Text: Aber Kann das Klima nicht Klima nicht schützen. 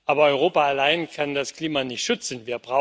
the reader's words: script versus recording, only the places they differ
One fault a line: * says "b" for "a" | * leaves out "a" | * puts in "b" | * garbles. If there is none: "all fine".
* puts in "Europa allein"
* leaves out "Klima nicht"